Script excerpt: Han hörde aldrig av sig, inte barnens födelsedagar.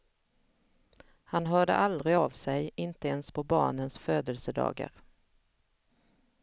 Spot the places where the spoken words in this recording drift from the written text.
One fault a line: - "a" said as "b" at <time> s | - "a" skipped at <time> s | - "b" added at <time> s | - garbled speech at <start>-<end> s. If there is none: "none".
- "ens på" added at 3.1 s